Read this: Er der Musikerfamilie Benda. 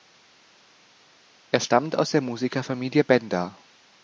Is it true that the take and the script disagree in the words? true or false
true